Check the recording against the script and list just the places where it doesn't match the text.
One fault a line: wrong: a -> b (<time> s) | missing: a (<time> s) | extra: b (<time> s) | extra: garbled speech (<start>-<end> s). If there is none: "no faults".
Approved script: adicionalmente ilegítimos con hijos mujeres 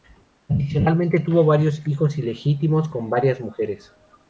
extra: tuvo varios hijos (1.2 s)
wrong: hijos -> varias (3.1 s)